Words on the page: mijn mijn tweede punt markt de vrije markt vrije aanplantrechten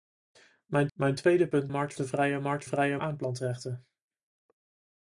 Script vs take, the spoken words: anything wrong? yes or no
no